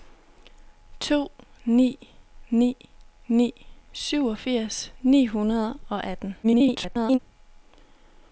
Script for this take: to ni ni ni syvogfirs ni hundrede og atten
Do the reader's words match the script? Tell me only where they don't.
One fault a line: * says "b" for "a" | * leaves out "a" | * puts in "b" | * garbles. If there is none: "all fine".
* garbles